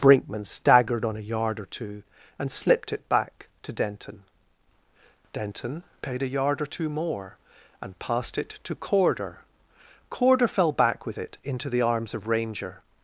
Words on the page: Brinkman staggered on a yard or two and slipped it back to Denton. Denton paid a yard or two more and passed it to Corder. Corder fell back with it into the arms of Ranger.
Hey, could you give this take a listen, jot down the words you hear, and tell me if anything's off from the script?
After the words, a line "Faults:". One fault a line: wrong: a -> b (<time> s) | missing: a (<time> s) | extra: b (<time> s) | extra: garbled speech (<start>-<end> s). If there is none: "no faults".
Brinkman staggered on a yard or two and slipped it back to Denton. Denton paid a yard or two more and passed it to Corder. Corder fell back with it into the arms of Ranger.
Faults:
no faults